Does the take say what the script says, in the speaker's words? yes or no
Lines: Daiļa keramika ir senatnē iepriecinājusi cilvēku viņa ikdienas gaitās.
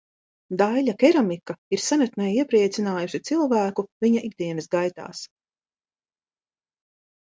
yes